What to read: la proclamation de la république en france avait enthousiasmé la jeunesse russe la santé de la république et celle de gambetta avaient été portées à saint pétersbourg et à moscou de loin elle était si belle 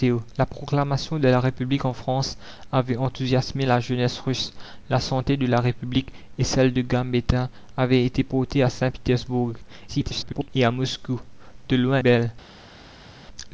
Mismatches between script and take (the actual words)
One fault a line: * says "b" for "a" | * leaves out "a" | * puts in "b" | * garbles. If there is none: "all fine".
* garbles
* leaves out "elle était si"